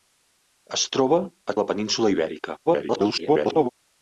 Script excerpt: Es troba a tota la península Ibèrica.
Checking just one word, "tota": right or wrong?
wrong